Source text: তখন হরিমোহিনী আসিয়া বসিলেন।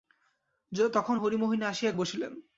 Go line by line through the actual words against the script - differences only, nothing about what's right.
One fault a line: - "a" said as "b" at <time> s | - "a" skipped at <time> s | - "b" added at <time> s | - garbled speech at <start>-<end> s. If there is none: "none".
none